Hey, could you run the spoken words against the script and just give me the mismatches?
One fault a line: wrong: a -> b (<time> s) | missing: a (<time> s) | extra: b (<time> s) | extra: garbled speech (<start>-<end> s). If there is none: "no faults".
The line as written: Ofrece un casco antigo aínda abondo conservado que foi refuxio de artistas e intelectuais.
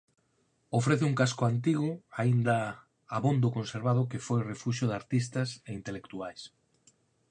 no faults